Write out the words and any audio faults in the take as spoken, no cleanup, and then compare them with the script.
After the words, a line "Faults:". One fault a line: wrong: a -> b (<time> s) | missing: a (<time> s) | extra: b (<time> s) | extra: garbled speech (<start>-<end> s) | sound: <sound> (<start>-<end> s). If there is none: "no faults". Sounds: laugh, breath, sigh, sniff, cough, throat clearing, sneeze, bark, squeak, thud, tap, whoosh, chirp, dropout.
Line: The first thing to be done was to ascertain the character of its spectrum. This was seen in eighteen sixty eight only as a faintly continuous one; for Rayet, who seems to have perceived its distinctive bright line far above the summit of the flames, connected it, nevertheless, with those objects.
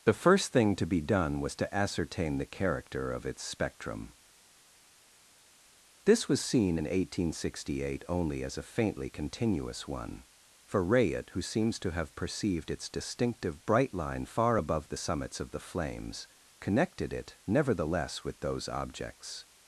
The first thing to be done was to ascertain the character of its spectrum. This was seen in eighteen sixty eight only as a faintly continuous one; for Rayet, who seems to have perceived its distinctive bright line far above the summits of the flames, connected it, nevertheless, with those objects.
Faults:
wrong: summit -> summits (15.0 s)